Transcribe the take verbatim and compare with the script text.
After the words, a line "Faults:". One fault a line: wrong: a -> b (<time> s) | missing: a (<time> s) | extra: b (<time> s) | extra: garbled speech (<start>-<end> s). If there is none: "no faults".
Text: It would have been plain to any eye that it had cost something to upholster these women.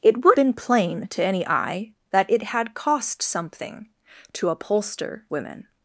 It would been plain to any eye that it had cost something to upholster women.
Faults:
missing: have (0.4 s)
missing: these (5.3 s)